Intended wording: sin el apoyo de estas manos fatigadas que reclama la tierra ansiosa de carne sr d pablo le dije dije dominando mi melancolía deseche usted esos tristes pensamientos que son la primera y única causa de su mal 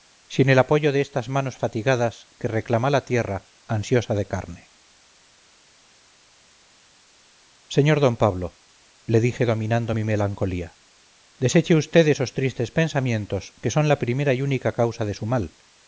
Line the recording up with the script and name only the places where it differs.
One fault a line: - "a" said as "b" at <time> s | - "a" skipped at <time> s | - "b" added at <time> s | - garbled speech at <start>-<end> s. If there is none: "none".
- "dije" skipped at 9.4 s